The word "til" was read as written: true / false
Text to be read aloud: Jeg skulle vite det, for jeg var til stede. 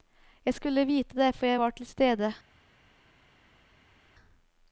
true